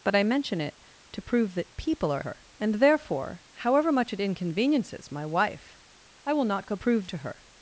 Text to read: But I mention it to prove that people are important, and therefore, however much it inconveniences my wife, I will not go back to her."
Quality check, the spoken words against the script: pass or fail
fail